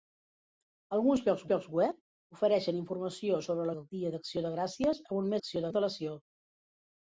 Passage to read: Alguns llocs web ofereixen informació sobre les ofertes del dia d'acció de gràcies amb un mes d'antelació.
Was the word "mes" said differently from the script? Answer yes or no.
yes